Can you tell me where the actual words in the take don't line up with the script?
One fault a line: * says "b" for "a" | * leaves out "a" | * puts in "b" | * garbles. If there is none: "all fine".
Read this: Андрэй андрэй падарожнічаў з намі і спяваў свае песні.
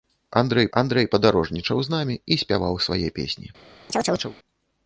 all fine